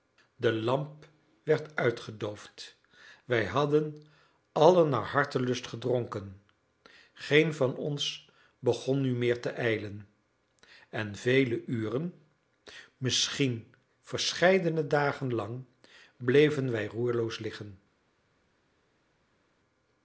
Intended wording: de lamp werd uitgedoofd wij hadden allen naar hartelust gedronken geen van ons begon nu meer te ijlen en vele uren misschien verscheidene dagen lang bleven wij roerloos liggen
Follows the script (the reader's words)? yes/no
yes